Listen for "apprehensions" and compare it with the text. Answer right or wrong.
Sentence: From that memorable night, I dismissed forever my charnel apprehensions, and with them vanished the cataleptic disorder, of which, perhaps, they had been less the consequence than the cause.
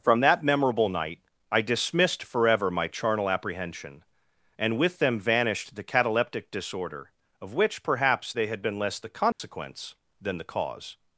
wrong